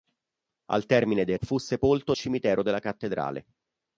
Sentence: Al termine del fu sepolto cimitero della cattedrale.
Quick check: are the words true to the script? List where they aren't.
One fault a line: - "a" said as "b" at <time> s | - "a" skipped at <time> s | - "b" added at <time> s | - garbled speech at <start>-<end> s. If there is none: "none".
none